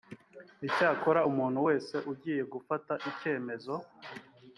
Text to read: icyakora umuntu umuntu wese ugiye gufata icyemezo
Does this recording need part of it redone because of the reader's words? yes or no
yes